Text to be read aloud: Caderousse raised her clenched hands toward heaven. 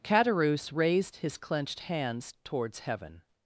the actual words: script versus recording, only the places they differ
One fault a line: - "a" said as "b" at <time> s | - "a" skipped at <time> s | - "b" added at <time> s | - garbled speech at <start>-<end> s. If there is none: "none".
- "her" said as "his" at 1.2 s
- "toward" said as "towards" at 2.4 s